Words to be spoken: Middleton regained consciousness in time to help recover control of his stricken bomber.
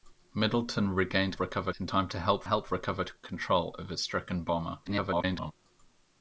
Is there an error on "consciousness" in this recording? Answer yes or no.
yes